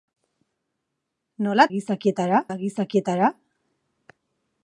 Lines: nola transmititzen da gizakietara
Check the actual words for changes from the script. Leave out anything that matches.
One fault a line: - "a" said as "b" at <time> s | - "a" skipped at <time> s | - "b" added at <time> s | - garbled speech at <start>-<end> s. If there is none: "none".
- "transmititzen" said as "gizakietara" at 1.7 s